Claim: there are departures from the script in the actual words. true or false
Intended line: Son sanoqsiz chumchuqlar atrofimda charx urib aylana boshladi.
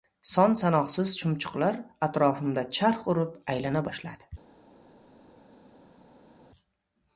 false